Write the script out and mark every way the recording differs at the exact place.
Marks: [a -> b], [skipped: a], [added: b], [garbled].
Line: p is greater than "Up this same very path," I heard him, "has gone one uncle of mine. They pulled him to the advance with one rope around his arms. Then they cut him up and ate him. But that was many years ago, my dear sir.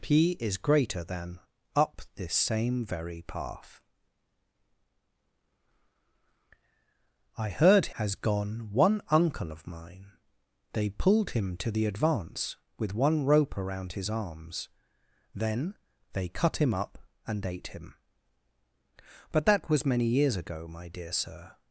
p is greater than "Up this same very path," I heard [skipped: him,] "has gone one uncle of mine. They pulled him to the advance with one rope around his arms. Then they cut him up and ate him. But that was many years ago, my dear sir.